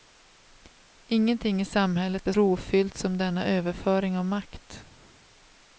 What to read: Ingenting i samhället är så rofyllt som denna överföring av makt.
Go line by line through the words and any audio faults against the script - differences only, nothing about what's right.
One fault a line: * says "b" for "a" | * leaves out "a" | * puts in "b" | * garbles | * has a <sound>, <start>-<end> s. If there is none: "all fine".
* leaves out "så"